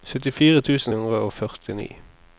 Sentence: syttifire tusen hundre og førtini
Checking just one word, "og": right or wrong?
right